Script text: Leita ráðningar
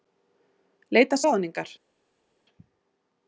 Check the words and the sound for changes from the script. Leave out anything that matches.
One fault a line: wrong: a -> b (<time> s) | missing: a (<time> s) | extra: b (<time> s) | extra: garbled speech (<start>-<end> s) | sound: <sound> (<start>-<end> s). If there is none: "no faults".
no faults